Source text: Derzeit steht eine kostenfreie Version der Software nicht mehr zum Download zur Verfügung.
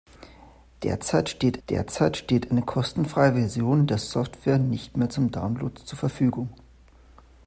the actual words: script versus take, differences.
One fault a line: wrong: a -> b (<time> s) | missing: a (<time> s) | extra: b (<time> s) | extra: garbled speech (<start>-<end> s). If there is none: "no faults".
extra: derzeit steht (1.7 s)